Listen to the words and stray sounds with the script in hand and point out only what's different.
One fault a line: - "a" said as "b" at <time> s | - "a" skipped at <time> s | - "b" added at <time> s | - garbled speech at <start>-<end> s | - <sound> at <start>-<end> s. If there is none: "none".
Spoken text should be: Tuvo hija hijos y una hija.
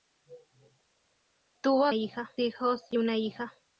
none